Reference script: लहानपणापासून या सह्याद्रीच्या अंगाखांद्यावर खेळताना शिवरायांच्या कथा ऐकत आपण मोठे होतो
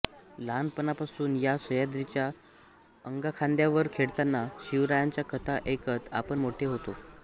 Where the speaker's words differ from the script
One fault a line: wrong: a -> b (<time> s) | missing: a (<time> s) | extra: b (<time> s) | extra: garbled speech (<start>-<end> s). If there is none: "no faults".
no faults